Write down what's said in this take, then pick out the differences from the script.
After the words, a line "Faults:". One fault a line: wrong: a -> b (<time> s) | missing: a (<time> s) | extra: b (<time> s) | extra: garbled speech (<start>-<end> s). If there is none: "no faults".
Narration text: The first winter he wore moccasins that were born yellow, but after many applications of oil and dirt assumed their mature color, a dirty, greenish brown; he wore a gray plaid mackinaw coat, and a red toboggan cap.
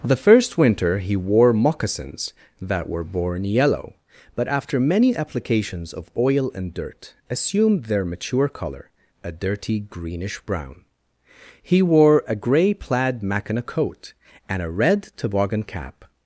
The first winter he wore moccasins that were born yellow, but after many applications of oil and dirt assumed their mature color, a dirty, greenish brown; he wore a gray plaid mackinaw coat, and a red toboggan cap.
Faults:
no faults